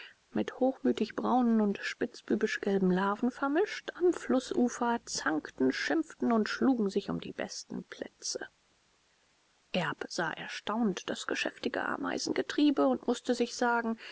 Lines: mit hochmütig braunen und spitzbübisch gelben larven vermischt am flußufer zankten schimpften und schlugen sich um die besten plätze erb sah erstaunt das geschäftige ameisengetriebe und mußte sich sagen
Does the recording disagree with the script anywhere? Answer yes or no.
no